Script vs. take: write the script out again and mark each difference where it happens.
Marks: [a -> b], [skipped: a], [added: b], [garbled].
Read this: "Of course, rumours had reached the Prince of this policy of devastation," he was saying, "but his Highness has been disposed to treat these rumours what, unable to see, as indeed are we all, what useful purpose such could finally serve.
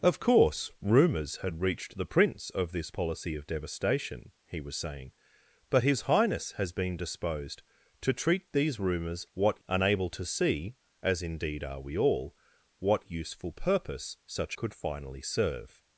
"Of course, rumours had reached the Prince of this policy of devastation," he was saying, "but his Highness has been disposed to treat these rumours what, unable to see, as indeed are we all, what useful purpose such could finally serve.